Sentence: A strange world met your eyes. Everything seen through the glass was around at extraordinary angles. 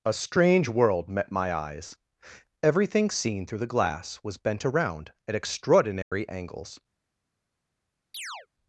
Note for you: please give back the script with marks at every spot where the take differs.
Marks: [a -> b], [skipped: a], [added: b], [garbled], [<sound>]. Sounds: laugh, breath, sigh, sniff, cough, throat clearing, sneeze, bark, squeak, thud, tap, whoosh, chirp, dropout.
A strange world met [your -> my] eyes. Everything seen through the glass was [added: bent] around at extraordinary [dropout] angles. [chirp]